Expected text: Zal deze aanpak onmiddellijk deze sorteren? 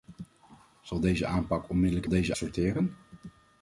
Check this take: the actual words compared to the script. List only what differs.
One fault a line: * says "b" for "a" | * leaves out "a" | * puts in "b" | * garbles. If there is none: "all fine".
all fine